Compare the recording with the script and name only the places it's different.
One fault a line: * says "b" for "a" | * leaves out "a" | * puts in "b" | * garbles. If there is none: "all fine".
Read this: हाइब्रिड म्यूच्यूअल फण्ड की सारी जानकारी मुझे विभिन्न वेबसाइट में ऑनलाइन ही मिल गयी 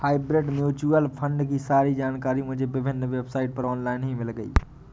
* says "पर" for "में"